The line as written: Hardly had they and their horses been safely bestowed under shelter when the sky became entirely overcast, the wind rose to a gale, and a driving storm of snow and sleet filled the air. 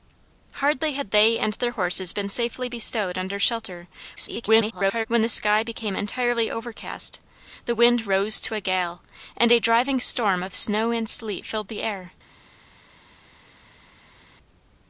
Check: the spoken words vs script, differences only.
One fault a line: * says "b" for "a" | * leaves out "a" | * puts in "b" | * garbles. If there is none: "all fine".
* garbles